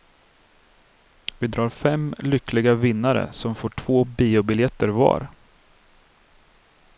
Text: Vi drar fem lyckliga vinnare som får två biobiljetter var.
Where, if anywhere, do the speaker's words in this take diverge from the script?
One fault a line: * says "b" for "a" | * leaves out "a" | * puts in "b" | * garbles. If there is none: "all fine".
all fine